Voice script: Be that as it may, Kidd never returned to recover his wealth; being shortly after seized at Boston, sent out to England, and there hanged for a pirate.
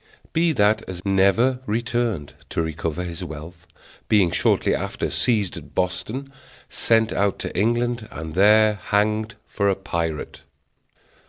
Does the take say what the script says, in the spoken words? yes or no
no